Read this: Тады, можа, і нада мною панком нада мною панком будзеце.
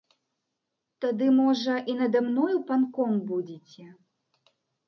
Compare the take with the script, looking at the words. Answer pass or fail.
fail